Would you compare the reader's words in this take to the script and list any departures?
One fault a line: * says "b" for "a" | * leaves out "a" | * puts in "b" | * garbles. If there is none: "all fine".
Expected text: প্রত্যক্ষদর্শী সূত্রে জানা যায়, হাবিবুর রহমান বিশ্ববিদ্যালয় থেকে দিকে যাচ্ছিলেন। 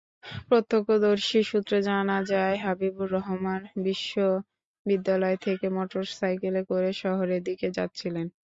* puts in "মোটরসাইকেলে করে শহরের"